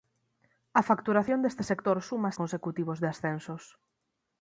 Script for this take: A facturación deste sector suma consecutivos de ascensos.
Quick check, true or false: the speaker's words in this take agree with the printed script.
true